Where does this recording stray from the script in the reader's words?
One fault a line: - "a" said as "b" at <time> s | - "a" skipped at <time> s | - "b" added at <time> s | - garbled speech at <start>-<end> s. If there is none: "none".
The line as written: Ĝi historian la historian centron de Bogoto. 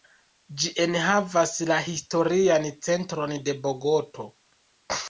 - "historian" said as "enhavas" at 0.8 s